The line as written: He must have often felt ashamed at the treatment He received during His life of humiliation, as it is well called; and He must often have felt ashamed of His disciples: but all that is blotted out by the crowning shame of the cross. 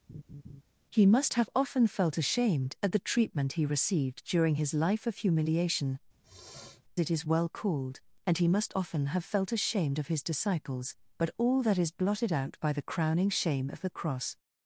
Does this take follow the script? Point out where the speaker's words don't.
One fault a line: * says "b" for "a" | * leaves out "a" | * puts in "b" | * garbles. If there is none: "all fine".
* leaves out "as"